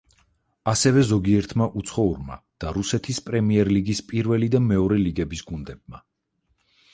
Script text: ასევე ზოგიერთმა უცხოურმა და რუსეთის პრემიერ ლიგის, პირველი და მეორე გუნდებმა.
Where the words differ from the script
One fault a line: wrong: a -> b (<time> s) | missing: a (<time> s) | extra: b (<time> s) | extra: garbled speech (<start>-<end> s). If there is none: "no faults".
extra: ლიგების (5.0 s)